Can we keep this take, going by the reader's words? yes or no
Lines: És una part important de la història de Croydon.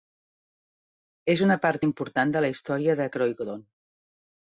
yes